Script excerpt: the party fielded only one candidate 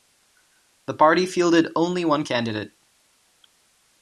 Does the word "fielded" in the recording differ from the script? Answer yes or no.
no